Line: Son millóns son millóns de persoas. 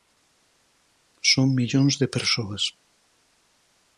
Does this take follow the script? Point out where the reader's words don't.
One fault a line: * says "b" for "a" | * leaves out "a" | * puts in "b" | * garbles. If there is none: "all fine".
* leaves out "son millóns"